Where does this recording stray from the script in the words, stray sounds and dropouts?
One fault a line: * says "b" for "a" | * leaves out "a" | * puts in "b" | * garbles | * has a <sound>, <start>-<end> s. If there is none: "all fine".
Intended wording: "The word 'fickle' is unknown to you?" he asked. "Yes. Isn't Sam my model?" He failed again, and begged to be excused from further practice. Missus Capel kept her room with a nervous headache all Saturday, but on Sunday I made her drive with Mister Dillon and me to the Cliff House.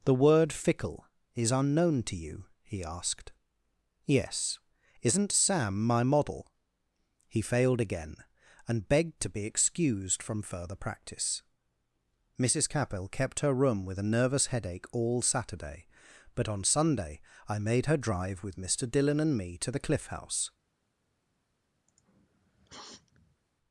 * has a sniff, 21.9-23.4 s